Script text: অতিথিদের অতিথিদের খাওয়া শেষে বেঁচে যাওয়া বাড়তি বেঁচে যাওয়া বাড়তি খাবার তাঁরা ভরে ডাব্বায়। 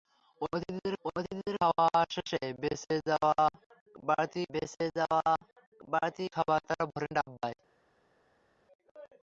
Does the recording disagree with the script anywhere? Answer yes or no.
no